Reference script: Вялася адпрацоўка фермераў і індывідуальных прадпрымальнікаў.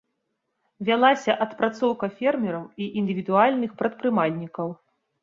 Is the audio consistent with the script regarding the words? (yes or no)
yes